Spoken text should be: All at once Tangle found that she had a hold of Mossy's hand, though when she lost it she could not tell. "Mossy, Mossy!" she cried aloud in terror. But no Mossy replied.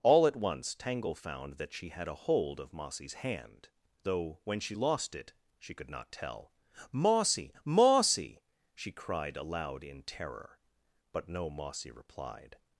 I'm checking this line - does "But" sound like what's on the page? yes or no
yes